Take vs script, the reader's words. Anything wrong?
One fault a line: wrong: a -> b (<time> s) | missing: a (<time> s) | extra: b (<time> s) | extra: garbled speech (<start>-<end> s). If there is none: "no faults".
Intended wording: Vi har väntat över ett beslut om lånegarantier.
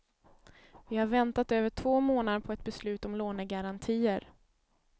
extra: två månader på (1.7 s)